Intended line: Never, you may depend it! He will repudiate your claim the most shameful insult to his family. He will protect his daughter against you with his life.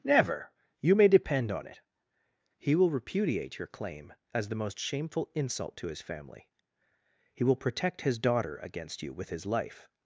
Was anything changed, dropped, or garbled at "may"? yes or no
no